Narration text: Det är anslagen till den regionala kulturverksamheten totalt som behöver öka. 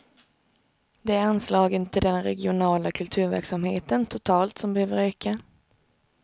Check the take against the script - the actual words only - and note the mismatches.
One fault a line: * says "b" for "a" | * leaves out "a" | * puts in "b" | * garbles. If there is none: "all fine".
all fine